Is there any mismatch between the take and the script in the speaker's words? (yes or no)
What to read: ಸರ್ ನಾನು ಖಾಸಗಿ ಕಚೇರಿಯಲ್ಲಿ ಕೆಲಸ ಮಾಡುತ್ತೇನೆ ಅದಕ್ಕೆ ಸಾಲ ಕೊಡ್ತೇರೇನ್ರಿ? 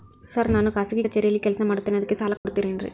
no